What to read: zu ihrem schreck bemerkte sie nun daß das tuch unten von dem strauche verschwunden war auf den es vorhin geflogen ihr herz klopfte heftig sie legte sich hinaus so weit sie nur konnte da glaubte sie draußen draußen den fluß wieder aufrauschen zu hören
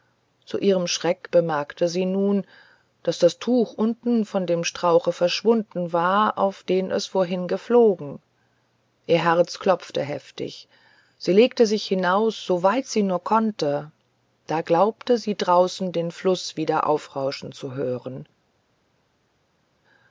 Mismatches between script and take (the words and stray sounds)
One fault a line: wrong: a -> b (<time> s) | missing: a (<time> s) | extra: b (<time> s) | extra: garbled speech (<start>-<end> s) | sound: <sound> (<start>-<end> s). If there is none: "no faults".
missing: draußen (15.9 s)